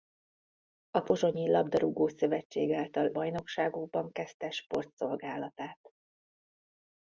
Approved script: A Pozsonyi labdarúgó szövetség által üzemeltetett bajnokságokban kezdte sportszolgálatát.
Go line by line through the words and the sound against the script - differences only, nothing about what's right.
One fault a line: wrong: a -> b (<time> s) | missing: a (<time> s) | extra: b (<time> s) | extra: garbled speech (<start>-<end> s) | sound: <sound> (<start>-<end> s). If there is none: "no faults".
missing: üzemeltetett (3.1 s)